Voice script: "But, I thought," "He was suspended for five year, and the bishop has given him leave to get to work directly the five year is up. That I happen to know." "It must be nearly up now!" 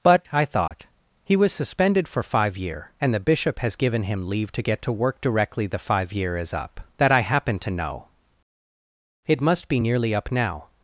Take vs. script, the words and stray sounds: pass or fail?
fail